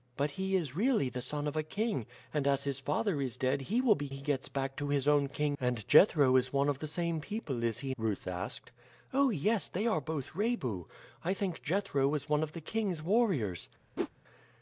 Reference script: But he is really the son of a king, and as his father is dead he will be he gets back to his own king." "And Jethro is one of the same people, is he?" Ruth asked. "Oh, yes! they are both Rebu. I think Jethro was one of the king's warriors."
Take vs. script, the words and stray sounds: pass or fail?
fail